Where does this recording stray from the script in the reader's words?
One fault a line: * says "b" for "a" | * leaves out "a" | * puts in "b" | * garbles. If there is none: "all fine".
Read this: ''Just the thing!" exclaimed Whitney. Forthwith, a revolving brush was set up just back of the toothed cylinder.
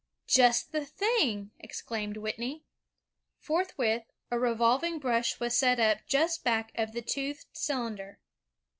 all fine